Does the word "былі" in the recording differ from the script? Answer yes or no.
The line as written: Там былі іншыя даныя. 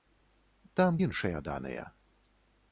yes